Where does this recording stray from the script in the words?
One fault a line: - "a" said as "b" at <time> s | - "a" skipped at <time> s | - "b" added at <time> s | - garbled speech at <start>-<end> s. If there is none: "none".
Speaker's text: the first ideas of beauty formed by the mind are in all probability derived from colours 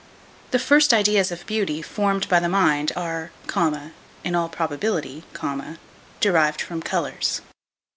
none